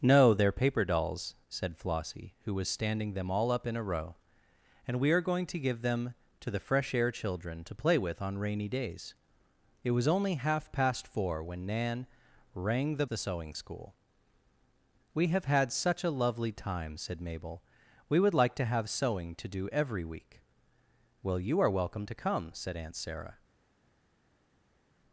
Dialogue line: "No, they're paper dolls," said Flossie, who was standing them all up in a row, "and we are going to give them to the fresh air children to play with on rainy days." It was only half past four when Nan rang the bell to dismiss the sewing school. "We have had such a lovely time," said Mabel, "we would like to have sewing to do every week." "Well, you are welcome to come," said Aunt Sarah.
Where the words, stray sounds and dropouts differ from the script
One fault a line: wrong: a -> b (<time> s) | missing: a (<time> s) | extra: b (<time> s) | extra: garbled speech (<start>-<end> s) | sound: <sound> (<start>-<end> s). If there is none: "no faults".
missing: bell to dismiss (13.1 s)